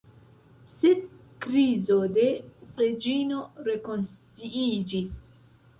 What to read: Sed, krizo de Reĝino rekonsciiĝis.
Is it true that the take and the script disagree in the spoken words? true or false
false